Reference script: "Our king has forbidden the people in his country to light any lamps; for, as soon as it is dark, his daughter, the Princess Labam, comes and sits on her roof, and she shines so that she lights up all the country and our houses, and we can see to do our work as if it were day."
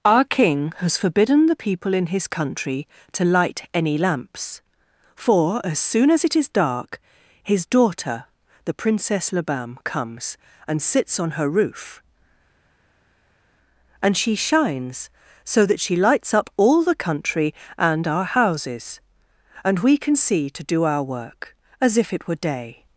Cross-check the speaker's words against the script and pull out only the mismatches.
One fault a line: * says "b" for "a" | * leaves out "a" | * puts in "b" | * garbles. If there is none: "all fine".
all fine